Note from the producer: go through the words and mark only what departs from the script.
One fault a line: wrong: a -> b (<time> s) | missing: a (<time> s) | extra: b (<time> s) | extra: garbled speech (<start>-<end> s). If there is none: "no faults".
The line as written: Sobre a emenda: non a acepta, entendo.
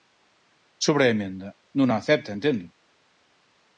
no faults